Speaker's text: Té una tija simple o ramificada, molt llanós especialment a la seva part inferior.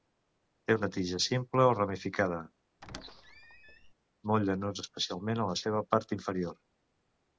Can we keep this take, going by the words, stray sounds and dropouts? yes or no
no